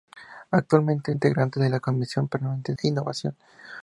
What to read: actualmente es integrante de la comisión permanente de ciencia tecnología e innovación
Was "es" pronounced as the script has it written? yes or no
no